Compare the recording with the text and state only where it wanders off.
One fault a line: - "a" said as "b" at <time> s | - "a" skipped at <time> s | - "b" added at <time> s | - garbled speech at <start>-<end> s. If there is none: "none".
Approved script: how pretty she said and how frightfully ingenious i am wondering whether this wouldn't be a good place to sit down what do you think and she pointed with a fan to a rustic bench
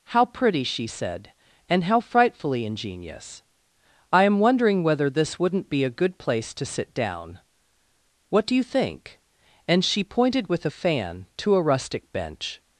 none